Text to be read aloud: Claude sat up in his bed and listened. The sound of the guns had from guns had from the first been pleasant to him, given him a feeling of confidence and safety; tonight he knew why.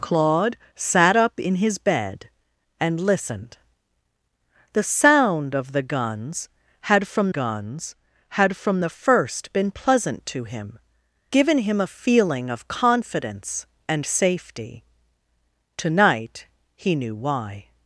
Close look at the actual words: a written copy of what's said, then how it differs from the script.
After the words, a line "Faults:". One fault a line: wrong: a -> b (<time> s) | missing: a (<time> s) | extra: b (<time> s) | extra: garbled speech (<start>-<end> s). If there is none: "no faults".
Claude sat up in his bed and listened. The sound of the guns had from guns had from the first been pleasant to him, given him a feeling of confidence and safety; tonight he knew why.
Faults:
no faults